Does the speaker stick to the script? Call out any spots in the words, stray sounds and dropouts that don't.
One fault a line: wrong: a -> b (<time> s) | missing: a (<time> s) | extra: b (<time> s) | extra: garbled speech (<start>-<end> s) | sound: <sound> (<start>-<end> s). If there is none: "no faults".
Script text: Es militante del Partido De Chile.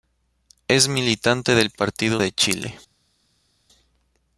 no faults